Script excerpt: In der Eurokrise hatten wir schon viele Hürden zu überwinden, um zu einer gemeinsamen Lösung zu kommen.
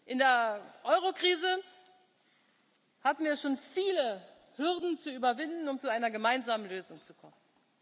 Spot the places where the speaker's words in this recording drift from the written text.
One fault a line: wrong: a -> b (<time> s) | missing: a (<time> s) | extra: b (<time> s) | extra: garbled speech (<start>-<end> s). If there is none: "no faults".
no faults